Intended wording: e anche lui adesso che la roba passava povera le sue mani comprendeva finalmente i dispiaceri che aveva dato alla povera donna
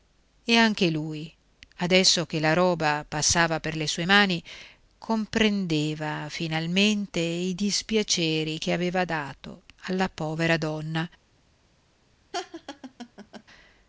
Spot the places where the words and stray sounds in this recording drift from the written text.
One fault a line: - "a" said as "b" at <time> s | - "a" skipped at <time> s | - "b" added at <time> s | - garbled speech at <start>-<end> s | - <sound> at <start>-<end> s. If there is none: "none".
- "povera" said as "per" at 3.6 s
- laugh at 12.3-13.4 s